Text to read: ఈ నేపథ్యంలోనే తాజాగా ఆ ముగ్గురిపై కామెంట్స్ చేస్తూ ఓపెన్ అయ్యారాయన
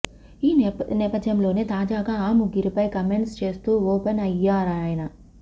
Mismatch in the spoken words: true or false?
false